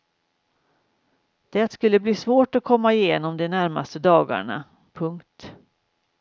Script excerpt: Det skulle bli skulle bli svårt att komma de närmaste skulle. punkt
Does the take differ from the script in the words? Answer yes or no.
yes